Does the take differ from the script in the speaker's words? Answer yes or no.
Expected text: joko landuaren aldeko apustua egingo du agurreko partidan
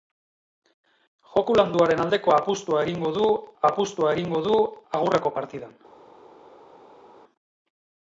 yes